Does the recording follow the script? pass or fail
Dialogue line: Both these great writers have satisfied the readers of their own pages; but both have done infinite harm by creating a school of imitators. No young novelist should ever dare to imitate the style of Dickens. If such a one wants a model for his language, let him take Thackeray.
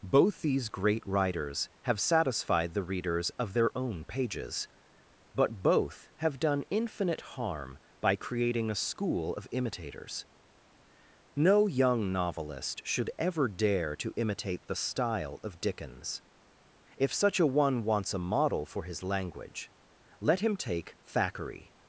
pass